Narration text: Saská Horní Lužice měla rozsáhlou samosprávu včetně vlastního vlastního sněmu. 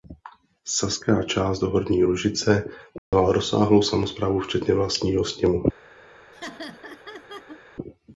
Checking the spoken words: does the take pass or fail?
fail